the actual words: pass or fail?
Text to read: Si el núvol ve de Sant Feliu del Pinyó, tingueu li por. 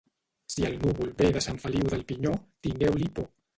pass